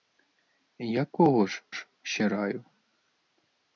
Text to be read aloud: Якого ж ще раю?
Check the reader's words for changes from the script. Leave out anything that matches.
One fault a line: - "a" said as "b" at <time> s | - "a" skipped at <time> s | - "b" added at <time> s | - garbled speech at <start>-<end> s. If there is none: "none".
- "ж" added at 1.7 s